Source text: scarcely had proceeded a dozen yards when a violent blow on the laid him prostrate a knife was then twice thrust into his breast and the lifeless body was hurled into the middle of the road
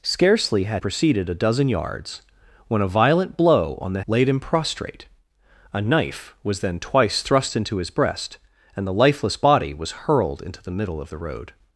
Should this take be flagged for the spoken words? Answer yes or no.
no